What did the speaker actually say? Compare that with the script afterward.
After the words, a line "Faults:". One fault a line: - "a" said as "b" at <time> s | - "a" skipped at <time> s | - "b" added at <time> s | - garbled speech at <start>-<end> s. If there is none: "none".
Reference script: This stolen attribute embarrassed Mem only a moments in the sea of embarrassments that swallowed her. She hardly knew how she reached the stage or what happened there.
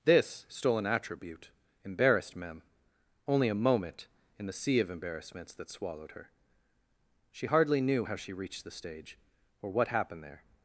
This stolen attribute embarrassed Mem only a moment in the sea of embarrassments that swallowed her. She hardly knew how she reached the stage or what happened there.
Faults:
- "moments" said as "moment" at 3.5 s